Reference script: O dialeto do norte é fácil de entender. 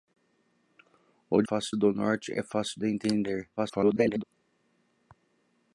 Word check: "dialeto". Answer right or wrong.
wrong